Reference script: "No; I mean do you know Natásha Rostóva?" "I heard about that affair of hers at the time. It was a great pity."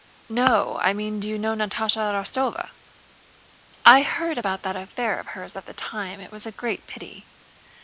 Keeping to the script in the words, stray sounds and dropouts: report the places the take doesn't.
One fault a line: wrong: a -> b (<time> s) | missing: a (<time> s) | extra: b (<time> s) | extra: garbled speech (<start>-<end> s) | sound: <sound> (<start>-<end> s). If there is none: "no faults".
no faults